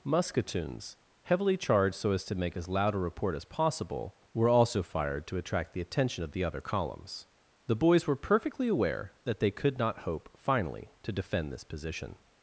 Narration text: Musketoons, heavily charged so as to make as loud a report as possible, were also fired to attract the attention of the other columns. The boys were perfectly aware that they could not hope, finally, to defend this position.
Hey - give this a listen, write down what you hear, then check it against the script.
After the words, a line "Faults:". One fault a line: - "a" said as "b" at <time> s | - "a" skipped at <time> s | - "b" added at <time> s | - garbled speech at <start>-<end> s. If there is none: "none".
Musketoons, heavily charged so as to make as loud a report as possible, were also fired to attract the attention of the other columns. The boys were perfectly aware that they could not hope, finally, to defend this position.
Faults:
none